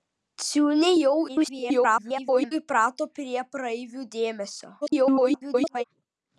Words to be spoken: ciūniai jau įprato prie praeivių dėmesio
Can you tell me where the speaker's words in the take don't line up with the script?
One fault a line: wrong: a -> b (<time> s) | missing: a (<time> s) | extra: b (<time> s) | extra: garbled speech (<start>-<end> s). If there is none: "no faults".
extra: garbled speech (1.3-2.5 s)
extra: garbled speech (4.8-5.8 s)